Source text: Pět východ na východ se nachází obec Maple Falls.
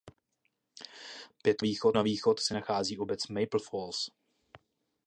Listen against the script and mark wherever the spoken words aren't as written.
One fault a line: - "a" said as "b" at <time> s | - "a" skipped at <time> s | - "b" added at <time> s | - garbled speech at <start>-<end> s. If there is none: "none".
none